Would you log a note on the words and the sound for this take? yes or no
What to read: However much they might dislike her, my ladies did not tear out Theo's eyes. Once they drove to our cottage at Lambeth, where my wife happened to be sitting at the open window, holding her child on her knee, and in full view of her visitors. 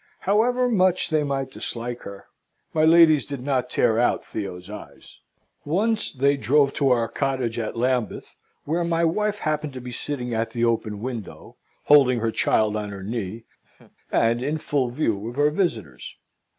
yes